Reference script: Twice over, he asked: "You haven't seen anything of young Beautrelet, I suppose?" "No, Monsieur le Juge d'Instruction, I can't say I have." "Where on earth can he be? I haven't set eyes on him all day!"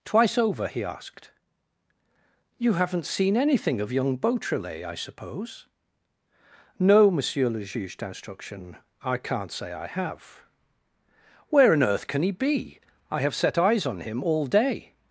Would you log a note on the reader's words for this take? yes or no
yes